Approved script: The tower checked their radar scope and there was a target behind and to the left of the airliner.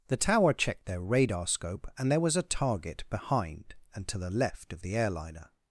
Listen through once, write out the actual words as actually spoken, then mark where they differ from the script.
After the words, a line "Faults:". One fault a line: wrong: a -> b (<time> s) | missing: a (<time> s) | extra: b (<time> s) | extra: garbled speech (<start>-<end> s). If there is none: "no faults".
The tower checked their radar scope and there was a target behind and to the left of the airliner.
Faults:
no faults